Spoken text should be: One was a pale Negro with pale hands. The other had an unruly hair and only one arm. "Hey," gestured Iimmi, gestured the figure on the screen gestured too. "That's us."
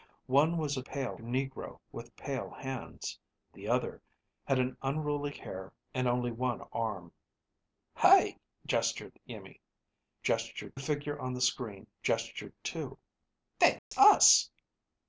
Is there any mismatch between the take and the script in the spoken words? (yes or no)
no